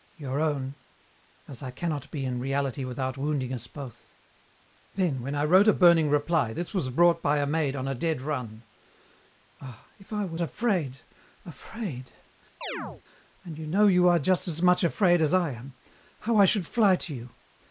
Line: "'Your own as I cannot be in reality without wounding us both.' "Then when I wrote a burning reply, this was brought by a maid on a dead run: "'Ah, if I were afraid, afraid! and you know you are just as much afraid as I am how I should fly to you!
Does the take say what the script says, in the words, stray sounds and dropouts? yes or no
no